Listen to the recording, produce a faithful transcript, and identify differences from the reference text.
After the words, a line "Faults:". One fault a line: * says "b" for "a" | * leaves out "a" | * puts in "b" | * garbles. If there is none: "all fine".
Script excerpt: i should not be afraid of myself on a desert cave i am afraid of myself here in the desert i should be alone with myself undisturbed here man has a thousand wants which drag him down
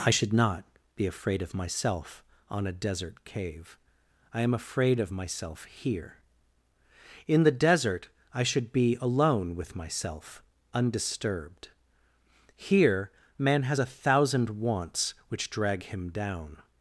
i should not be afraid of myself on a desert cave i am afraid of myself here in the desert i should be alone with myself undisturbed here man has a thousand wants which drag him down
Faults:
all fine